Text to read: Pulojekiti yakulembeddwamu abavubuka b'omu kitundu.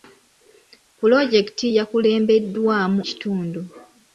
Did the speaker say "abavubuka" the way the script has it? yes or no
no